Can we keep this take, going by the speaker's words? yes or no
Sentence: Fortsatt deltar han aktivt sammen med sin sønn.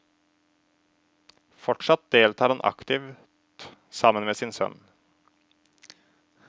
yes